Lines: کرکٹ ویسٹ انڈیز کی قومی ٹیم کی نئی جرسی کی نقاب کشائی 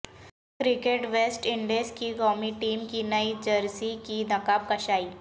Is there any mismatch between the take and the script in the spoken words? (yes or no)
no